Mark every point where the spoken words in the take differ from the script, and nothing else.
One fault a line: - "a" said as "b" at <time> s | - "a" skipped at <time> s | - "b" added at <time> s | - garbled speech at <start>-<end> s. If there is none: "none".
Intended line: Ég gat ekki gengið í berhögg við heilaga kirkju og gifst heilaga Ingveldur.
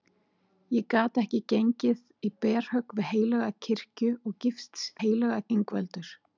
none